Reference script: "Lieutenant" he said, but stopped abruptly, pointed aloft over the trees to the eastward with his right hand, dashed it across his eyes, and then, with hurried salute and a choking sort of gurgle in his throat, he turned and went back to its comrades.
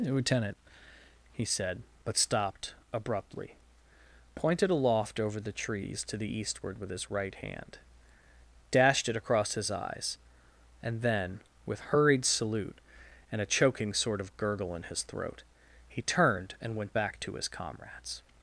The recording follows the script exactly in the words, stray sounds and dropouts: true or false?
false